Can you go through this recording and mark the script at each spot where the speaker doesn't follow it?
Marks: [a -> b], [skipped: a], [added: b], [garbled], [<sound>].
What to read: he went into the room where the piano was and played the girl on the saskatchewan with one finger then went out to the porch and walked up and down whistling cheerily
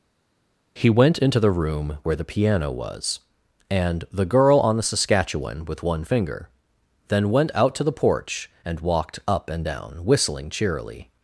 he went into the room where the piano was and [skipped: played] the girl on the saskatchewan with one finger then went out to the porch and walked up and down whistling cheerily